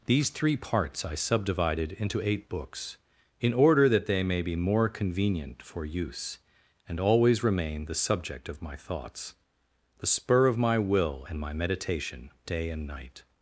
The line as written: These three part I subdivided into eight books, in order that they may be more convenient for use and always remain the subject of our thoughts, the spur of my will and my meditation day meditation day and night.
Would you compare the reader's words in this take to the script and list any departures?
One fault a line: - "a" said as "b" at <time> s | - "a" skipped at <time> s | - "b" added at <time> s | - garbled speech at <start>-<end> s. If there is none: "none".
- "part" said as "parts" at 0.6 s
- "our" said as "my" at 8.6 s
- "meditation day" skipped at 12.7 s